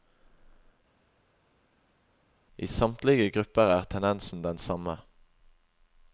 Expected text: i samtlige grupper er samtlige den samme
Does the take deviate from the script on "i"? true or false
false